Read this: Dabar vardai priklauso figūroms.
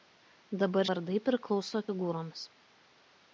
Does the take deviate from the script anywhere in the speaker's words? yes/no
no